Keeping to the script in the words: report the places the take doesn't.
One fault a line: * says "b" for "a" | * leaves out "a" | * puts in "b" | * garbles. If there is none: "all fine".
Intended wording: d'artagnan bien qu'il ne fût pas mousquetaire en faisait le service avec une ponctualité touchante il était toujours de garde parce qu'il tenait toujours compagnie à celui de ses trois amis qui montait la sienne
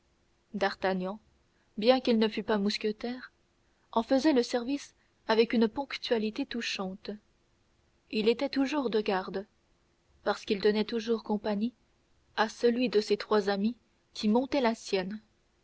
all fine